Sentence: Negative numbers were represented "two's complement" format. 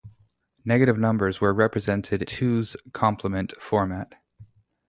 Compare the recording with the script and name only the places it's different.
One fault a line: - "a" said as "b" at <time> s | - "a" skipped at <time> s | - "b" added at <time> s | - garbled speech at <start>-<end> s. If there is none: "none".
none